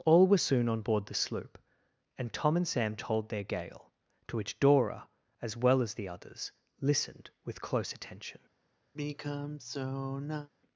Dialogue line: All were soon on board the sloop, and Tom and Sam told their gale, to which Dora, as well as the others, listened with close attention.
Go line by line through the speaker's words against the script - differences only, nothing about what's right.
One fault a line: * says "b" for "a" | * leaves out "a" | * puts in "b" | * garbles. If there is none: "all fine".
all fine